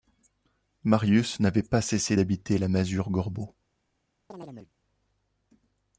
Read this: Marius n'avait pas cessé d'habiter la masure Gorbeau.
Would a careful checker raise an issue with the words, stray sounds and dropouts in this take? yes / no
yes